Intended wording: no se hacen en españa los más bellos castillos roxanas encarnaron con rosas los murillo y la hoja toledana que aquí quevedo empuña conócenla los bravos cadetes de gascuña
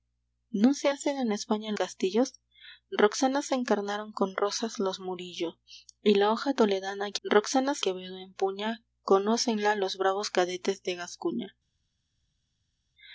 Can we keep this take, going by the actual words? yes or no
no